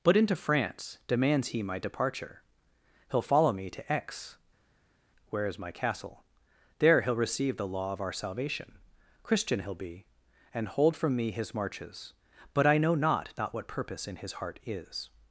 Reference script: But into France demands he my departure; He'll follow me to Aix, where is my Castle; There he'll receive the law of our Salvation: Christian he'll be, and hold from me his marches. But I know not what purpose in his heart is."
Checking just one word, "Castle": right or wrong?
right